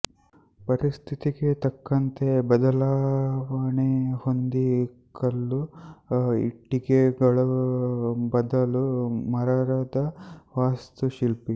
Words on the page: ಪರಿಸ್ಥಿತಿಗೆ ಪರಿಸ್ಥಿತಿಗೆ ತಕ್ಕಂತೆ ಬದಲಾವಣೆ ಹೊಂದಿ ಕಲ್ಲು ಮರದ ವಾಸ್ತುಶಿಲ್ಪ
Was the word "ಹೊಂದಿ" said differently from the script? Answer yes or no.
no